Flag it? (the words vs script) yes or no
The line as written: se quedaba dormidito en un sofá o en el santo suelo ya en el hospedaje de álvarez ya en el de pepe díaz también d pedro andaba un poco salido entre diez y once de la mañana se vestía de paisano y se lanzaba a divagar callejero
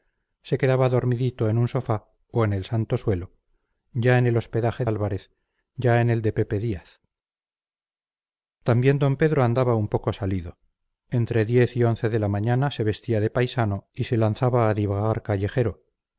yes